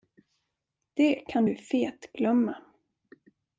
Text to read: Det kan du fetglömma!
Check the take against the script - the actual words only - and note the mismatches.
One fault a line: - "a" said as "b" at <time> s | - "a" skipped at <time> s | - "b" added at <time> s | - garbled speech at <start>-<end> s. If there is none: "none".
none